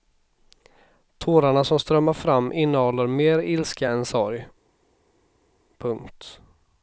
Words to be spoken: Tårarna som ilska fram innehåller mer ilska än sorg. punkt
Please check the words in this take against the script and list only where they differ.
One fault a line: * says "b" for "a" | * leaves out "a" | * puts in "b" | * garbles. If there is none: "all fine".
* says "strömmar" for "ilska"